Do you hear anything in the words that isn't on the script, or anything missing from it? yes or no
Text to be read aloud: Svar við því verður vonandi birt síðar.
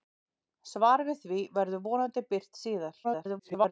yes